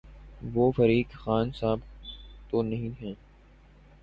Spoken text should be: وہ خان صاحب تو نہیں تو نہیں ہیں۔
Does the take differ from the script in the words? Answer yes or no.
yes